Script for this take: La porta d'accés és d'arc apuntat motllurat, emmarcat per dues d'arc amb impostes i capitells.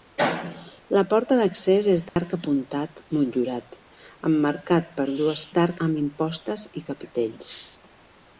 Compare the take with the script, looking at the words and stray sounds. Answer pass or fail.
fail